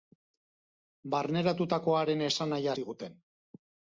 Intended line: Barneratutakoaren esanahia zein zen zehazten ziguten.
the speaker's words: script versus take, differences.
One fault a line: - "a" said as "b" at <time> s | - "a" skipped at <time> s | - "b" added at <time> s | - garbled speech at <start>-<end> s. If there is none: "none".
- "zein zen zehazten" skipped at 2.7 s